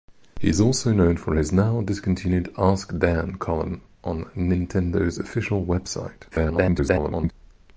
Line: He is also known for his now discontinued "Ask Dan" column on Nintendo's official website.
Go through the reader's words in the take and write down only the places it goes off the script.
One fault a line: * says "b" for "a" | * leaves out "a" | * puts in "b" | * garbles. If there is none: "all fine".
* garbles